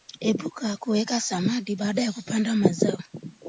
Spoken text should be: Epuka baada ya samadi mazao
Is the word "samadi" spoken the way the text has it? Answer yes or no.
no